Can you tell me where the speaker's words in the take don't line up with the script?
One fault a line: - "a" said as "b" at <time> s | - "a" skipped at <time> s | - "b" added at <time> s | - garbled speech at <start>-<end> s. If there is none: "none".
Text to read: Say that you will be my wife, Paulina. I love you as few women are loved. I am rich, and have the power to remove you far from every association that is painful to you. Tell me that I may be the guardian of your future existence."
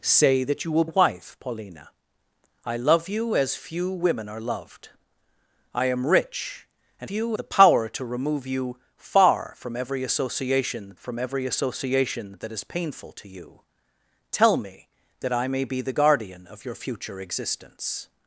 - "be my" skipped at 0.8 s
- "have" said as "you" at 7.1 s
- "from every association" added at 11.0 s